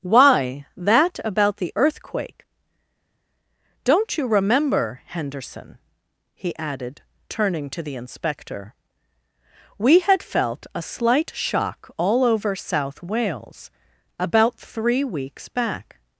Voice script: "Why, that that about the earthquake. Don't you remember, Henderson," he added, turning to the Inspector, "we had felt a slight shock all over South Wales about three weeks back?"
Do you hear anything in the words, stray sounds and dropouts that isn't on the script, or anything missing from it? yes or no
yes